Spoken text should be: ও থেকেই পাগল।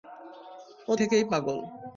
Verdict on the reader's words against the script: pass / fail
pass